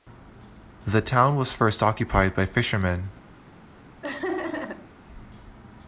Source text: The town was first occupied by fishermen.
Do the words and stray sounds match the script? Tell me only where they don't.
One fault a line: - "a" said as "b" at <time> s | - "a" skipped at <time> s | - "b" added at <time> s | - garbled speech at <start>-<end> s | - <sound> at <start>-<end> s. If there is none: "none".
- laugh at 4.0-4.9 s